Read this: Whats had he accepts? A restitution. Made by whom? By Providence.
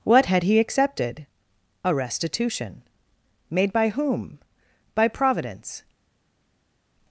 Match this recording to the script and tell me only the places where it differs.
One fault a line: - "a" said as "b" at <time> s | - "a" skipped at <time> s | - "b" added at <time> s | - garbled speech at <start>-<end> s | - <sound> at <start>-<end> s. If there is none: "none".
- "Whats" said as "What" at 0.0 s
- "accepts" said as "accepted" at 0.6 s